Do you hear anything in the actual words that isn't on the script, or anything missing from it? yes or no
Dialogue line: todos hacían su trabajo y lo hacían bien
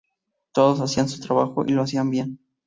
no